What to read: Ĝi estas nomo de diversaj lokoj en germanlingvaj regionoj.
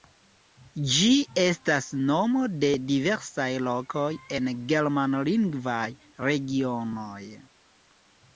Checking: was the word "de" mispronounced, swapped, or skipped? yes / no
no